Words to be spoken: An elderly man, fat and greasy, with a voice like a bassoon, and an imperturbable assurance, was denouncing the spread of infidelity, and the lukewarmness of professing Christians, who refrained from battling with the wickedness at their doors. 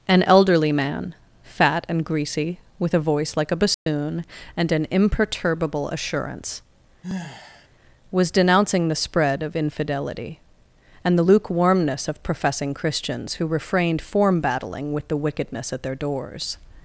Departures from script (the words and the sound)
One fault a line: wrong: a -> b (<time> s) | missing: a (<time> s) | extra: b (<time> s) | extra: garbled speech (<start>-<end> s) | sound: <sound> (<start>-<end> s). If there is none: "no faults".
sound: dropout (3.7-3.9 s)
sound: sigh (7.0-7.7 s)
wrong: from -> form (14.0 s)